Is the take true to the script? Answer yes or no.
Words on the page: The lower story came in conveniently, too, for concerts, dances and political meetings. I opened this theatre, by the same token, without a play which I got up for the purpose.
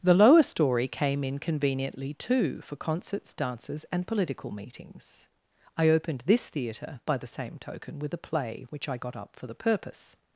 no